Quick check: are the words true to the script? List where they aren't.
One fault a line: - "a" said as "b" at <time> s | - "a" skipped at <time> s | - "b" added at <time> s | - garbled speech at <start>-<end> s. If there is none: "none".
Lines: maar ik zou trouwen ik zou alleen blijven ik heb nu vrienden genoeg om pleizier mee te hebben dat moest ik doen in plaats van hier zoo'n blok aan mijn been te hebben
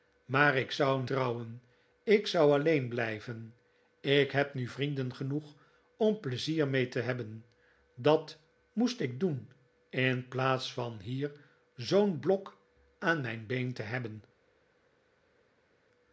none